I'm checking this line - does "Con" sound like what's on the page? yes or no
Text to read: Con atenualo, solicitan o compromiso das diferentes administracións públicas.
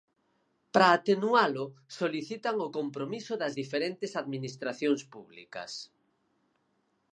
no